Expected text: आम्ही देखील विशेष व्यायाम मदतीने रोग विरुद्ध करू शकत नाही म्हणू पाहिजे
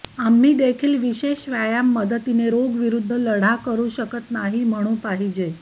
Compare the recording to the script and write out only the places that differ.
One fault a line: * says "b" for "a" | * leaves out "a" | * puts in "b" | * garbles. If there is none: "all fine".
* puts in "लढा"